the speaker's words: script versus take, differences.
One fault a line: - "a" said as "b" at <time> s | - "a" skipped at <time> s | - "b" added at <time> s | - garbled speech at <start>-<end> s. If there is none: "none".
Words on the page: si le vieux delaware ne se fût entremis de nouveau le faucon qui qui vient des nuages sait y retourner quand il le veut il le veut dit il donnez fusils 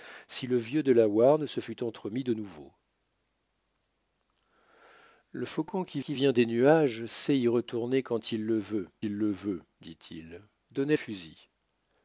none